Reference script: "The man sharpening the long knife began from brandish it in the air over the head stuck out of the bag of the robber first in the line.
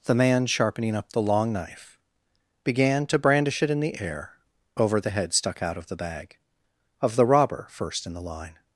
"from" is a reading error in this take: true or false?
true